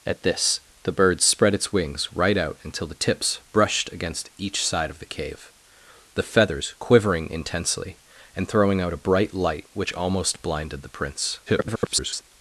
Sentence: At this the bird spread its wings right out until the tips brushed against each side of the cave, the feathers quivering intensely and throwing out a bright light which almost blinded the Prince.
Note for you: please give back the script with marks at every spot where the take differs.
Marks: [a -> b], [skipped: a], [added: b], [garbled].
At this the bird spread its wings right out until the tips brushed against each side of the cave, the feathers quivering intensely and throwing out a bright light which almost blinded the Prince. [garbled]